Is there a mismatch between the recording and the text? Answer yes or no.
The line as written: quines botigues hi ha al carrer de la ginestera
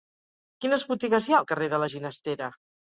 no